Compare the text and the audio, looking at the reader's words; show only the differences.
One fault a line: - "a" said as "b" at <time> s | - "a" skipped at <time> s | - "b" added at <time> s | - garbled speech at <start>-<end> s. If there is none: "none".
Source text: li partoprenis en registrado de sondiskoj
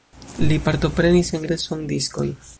- "registrado" skipped at 1.4 s